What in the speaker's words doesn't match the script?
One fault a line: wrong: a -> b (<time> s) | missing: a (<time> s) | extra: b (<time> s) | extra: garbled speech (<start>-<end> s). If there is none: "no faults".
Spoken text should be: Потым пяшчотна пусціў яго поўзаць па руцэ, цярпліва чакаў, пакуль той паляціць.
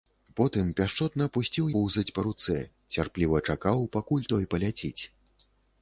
missing: яго (1.7 s)